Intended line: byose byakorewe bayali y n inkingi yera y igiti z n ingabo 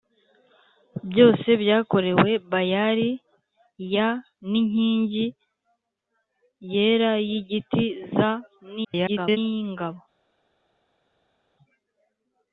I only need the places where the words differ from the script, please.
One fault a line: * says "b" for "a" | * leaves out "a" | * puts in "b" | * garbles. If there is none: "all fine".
* garbles